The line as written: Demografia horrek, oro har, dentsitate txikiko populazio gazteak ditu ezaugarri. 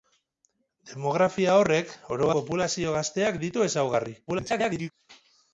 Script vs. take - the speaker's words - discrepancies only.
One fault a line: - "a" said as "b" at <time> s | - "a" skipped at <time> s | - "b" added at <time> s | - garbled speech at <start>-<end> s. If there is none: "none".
- "har dentsitate txikiko" skipped at 2.3 s
- garbled speech at 4.3-4.9 s